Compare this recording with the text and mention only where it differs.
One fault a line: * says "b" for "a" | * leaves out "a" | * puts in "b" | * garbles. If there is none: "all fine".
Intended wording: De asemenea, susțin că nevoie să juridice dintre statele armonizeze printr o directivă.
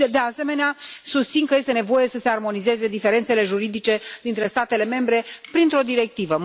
* puts in "este"
* puts in "se armonizeze diferențele"
* says "membre" for "armonizeze"